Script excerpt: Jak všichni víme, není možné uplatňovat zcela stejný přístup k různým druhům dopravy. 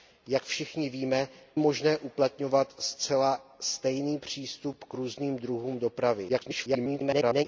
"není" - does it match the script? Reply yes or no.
no